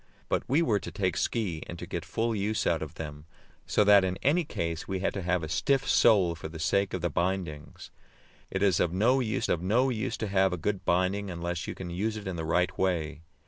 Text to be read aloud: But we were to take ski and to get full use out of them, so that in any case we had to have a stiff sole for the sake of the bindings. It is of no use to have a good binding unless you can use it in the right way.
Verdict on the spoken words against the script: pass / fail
fail